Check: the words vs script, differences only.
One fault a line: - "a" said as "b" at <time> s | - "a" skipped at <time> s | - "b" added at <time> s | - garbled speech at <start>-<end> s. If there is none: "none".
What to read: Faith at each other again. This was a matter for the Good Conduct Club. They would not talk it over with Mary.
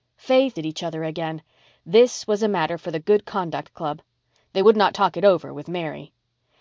none